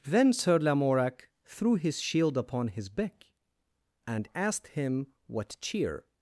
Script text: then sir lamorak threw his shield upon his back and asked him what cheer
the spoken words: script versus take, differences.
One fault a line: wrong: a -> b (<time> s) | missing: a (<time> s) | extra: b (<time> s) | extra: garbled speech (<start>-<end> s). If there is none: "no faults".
no faults